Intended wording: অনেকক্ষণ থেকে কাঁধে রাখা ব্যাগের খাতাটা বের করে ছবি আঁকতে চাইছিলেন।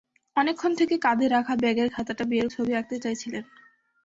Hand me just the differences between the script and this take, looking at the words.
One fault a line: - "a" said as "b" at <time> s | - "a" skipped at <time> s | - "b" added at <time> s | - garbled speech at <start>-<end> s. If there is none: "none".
- "করে" skipped at 2.5 s